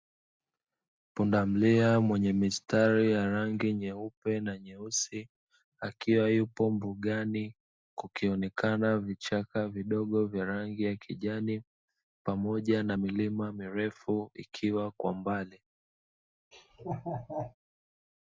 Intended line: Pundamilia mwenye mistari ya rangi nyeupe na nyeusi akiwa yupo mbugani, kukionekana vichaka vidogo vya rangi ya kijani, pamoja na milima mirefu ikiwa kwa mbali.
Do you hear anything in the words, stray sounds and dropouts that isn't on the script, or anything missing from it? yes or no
yes